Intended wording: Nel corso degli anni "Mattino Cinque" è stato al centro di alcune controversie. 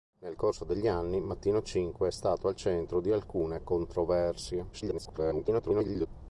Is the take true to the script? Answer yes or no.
no